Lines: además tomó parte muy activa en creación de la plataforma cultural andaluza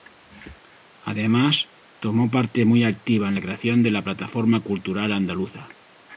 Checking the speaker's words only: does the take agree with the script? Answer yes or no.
no